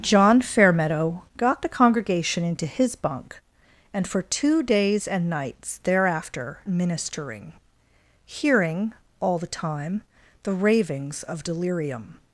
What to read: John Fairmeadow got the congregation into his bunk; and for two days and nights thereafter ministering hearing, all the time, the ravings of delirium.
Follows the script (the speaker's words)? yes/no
yes